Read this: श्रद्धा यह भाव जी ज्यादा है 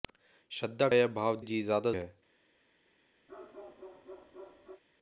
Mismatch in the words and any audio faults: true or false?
true